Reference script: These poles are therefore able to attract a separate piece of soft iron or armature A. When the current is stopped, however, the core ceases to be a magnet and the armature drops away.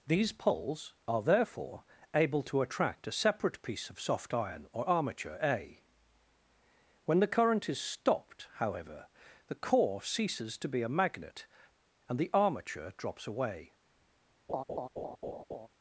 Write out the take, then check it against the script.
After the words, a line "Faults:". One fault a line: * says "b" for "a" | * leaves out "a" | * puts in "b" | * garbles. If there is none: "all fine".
These poles are therefore able to attract a separate piece of soft iron or armature A. When the current is stopped, however, the core ceases to be a magnet and the armature drops away.
Faults:
all fine